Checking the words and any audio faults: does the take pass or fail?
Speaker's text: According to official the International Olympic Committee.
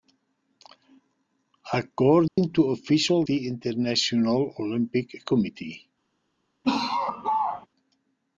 fail